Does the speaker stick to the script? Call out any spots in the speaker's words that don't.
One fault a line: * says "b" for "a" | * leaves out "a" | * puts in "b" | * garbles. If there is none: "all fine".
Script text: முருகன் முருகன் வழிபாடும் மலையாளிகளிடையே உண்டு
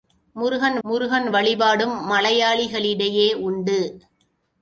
all fine